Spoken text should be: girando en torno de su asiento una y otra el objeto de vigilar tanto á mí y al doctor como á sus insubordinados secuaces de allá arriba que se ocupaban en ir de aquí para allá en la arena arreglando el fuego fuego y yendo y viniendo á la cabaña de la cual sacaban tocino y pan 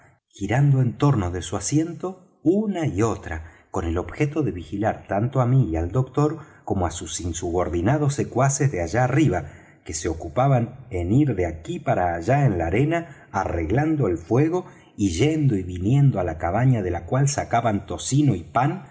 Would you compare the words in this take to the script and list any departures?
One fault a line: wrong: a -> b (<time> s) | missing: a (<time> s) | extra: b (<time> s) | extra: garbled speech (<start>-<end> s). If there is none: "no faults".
extra: con (3.7 s)
missing: fuego (14.7 s)